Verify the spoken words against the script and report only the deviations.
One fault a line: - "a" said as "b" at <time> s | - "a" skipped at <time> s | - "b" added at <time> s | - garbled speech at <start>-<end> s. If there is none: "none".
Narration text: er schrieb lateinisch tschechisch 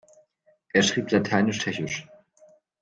none